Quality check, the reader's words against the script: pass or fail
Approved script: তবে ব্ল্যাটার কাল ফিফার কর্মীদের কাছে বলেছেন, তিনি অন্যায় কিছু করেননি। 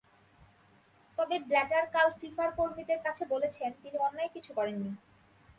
pass